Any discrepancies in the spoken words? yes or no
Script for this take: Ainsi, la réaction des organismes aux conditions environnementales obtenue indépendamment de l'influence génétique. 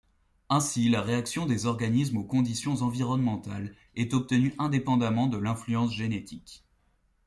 yes